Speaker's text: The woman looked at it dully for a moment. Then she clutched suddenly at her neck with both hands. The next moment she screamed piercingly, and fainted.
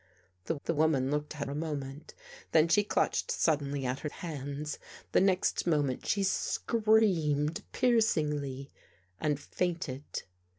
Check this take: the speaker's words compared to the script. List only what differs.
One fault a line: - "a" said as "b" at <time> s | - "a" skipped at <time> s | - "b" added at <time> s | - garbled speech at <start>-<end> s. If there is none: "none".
- "the" added at 0.6 s
- "it dully for" skipped at 1.5 s
- "neck with both" skipped at 4.1 s